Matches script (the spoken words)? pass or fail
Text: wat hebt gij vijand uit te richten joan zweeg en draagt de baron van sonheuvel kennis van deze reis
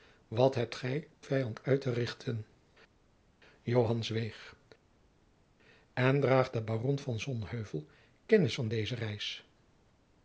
pass